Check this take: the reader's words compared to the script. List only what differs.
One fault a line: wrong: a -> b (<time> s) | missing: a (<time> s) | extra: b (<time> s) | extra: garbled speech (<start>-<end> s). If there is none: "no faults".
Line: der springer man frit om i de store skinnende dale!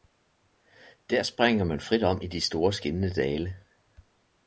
no faults